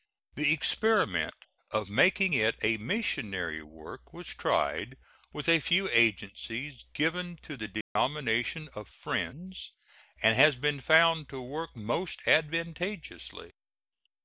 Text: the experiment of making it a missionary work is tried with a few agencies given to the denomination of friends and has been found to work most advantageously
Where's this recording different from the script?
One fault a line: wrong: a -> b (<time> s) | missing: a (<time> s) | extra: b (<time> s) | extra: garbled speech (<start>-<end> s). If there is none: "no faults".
wrong: is -> was (4.1 s)